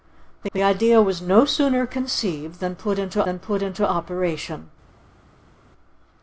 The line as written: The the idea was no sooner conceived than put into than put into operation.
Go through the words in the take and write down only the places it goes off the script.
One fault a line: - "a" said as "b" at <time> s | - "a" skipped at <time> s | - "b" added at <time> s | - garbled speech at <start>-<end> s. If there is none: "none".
none